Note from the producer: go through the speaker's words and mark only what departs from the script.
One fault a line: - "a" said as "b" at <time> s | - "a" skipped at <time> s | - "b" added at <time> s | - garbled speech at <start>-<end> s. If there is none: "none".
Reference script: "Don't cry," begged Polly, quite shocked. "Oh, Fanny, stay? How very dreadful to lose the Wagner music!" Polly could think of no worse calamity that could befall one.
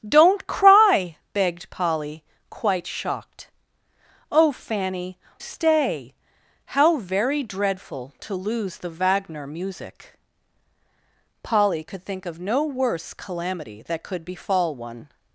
none